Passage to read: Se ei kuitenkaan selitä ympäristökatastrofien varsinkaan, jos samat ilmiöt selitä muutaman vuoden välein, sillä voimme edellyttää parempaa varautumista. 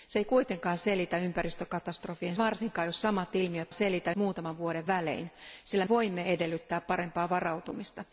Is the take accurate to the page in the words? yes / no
yes